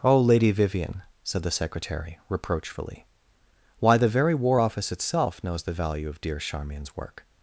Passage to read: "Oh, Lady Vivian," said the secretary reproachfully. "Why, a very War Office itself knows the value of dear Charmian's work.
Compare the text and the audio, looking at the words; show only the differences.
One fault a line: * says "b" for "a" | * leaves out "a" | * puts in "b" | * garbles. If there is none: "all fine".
* says "the" for "a"